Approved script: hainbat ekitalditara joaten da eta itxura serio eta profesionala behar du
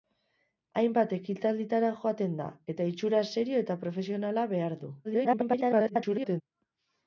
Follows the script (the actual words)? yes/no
no